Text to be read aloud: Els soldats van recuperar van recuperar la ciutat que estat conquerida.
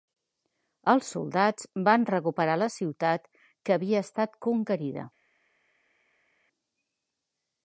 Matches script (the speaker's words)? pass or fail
fail